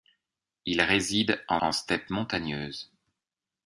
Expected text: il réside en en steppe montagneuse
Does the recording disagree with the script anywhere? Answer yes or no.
no